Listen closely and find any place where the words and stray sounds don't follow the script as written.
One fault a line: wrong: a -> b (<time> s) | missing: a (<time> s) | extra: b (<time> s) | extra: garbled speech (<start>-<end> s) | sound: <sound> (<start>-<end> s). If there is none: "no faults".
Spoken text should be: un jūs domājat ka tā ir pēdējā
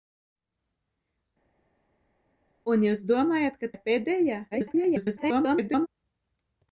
missing: tā (3.7 s)
extra: garbled speech (4.5-5.9 s)